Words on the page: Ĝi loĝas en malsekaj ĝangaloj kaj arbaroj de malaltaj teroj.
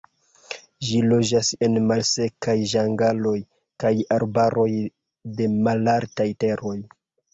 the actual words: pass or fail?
pass